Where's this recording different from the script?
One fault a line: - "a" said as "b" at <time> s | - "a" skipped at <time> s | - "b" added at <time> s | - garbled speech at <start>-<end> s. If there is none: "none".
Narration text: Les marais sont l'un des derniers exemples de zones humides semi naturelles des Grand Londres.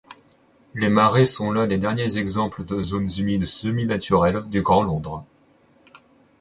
- "des" said as "du" at 4.5 s